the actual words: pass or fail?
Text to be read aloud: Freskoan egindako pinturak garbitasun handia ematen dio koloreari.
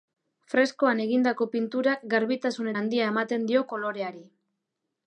pass